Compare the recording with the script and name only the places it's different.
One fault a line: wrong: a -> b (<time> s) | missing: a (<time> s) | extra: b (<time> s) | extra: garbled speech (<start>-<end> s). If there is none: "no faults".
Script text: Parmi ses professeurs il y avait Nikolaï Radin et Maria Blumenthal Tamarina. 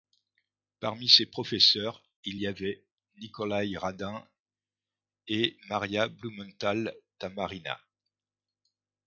no faults